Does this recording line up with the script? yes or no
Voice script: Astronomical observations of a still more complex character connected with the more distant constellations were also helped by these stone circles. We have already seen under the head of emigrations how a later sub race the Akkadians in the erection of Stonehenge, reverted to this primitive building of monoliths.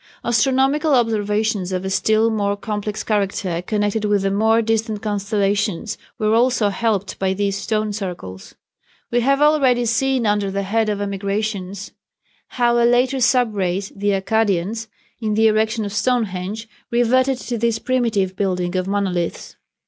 yes